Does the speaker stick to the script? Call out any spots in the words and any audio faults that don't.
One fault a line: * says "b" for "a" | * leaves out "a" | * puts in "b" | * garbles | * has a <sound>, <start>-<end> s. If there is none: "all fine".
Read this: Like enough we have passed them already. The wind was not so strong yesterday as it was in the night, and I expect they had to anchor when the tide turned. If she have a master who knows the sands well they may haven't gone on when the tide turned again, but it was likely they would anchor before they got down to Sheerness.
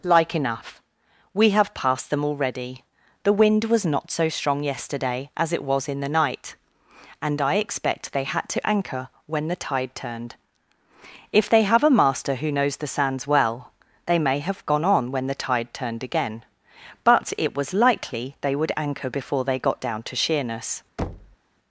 * says "they" for "she"
* says "have" for "haven't"
* has a thud, 21.0-21.4 s